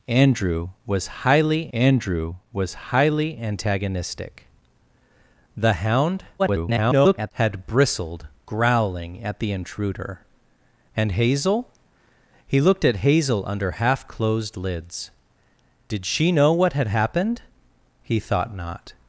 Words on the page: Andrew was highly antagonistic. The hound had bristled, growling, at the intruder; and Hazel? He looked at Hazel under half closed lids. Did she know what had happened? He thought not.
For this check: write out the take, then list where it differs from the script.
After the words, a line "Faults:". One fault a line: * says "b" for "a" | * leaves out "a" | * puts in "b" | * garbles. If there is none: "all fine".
Andrew was highly andrew was highly antagonistic. The hound [garbled] had bristled, growling, at the intruder; and Hazel? He looked at Hazel under half closed lids. Did she know what had happened? He thought not.
Faults:
* puts in "andrew was highly"
* garbles